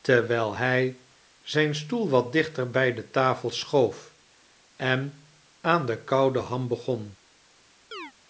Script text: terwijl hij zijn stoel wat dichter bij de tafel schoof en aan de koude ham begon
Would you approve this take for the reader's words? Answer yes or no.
yes